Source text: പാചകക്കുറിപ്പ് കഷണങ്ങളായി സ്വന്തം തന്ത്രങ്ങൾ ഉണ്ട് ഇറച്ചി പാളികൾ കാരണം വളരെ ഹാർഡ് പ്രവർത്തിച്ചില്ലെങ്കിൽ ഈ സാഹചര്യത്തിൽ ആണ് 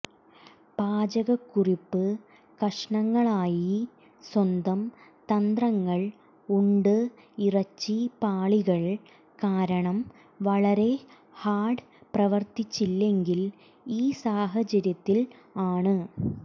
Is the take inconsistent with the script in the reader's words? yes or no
no